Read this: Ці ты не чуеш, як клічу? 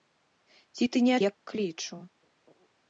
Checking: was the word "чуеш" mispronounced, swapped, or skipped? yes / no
yes